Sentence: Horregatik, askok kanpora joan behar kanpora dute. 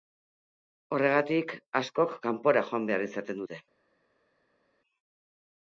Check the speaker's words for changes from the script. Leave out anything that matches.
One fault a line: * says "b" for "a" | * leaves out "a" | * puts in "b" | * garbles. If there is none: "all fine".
* says "izaten" for "kanpora"